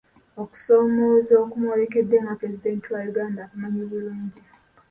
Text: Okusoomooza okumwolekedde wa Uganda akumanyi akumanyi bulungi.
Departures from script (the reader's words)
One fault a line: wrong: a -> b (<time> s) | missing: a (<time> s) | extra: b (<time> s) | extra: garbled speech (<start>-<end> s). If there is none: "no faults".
extra: nga pulezidenti (2.2 s)
missing: akumanyi (3.8 s)